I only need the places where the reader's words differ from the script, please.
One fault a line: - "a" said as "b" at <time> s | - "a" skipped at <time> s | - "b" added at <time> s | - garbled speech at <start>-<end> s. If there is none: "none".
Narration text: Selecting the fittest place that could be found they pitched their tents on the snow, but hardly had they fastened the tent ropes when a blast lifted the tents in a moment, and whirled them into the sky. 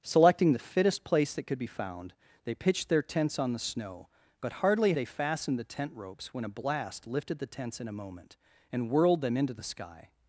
- "had" skipped at 4.9 s